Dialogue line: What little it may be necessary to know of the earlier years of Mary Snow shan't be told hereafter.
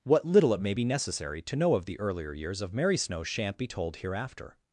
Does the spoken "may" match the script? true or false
true